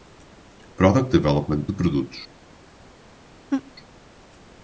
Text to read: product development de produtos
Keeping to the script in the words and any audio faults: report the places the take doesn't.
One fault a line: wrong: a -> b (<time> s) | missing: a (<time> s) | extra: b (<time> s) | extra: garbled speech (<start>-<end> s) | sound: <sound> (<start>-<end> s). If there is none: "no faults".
sound: laugh (3.5-3.7 s)